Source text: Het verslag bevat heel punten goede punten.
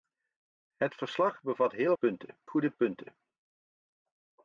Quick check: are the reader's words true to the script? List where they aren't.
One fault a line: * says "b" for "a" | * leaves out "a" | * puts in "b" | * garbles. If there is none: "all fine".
all fine